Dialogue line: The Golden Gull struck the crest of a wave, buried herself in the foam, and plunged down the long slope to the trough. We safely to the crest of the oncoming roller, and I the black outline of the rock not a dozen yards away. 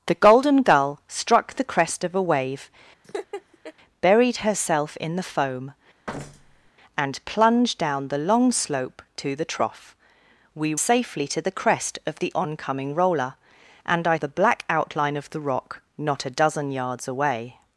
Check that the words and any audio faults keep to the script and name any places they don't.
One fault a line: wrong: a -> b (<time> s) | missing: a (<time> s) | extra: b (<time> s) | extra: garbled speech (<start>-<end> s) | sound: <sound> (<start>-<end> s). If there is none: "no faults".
sound: laugh (3.0-3.7 s)
sound: thud (6.1-6.7 s)